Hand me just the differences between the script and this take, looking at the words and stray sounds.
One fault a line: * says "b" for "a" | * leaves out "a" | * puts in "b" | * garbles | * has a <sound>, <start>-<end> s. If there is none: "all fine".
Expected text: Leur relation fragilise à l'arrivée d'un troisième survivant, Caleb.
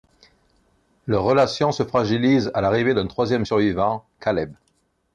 * puts in "se"